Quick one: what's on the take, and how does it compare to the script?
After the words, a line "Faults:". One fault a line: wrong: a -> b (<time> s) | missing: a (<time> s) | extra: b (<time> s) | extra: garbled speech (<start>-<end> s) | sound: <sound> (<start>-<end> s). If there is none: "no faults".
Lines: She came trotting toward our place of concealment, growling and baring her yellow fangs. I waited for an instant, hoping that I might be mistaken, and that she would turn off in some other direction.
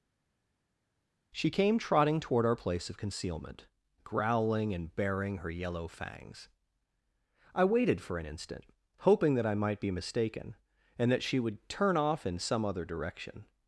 She came trotting toward our place of concealment, growling and baring her yellow fangs. I waited for an instant, hoping that I might be mistaken, and that she would turn off in some other direction.
Faults:
no faults